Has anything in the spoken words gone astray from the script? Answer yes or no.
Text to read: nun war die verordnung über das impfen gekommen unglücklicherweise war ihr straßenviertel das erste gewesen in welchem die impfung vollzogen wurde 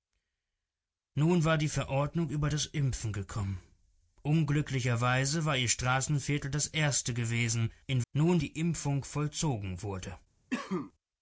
yes